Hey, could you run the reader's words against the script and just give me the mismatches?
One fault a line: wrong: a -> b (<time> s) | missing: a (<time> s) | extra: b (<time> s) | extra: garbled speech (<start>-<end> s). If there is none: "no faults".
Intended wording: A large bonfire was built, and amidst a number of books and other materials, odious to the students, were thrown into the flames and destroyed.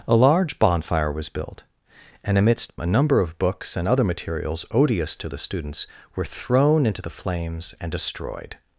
no faults